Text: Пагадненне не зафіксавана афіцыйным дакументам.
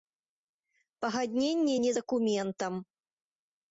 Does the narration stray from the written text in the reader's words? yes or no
yes